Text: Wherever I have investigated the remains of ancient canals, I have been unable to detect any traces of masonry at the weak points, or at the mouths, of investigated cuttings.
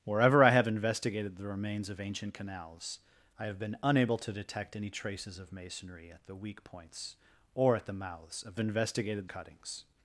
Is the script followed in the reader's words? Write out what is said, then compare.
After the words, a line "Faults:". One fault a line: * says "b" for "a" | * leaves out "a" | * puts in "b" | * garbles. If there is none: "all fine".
Wherever I have investigated the remains of ancient canals, I have been unable to detect any traces of masonry at the weak points, or at the mouths, of investigated cuttings.
Faults:
all fine